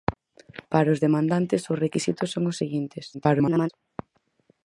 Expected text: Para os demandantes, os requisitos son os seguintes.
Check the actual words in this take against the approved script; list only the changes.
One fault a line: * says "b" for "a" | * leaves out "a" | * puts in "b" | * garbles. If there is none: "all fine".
* garbles